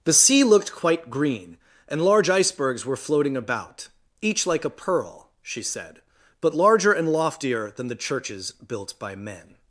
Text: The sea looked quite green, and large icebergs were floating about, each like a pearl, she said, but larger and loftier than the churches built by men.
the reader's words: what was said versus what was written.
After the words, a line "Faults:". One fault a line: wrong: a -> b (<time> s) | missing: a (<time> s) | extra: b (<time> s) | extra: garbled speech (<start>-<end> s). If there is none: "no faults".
The sea looked quite green, and large icebergs were floating about, each like a pearl, she said, but larger and loftier than the churches built by men.
Faults:
no faults